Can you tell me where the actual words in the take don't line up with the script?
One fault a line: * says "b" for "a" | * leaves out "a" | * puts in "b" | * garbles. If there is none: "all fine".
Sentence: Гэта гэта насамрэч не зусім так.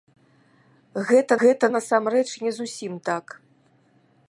all fine